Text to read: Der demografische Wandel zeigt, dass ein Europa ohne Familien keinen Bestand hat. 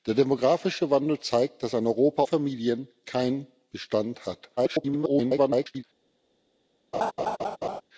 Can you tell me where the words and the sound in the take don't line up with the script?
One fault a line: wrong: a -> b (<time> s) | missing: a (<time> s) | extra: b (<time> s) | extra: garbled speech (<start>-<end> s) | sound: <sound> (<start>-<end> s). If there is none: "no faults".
missing: ohne (2.2 s)
extra: garbled speech (4.6-5.8 s)
sound: laugh (6.9-7.8 s)